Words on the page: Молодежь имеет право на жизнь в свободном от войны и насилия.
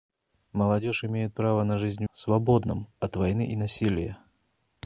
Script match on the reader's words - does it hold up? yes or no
yes